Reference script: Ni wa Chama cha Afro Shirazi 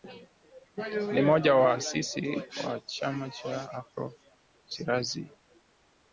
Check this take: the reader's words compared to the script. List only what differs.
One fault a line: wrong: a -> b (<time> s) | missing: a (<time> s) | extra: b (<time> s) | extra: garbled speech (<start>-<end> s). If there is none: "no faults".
extra: mmoja wa waasisi (1.2 s)